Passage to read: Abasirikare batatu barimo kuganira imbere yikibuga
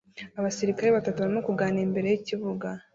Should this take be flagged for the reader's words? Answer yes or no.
no